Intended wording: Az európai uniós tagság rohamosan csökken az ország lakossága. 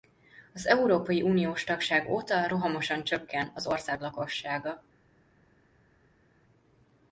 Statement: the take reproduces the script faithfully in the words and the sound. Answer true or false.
false